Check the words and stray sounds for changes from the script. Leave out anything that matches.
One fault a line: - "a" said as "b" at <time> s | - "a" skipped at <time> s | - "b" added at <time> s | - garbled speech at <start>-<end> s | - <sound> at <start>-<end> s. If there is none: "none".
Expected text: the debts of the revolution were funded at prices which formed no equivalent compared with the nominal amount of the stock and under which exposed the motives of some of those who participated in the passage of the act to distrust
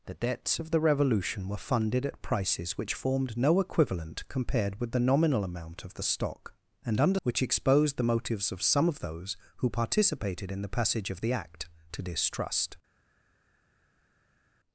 none